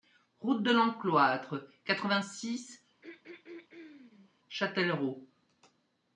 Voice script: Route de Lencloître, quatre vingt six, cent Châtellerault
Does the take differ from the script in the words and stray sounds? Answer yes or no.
yes